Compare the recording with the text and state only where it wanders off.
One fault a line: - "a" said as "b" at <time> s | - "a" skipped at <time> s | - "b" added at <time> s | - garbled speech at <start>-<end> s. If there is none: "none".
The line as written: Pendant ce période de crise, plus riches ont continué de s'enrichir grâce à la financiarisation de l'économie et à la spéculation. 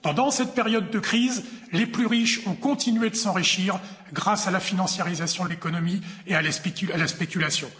- "ce" said as "cette" at 0.3 s
- "les" added at 1.7 s